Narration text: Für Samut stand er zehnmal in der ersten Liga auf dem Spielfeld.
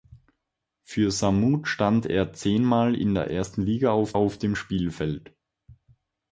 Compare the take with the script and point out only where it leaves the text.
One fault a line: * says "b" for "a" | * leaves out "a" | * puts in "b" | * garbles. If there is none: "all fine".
* puts in "auf"